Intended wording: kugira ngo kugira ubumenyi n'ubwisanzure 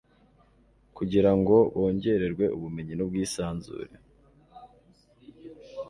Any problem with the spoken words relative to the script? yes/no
yes